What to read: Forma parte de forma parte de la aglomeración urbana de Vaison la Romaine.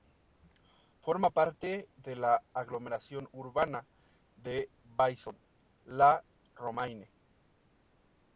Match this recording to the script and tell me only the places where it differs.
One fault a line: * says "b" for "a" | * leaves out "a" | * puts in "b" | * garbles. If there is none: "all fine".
* leaves out "forma parte de"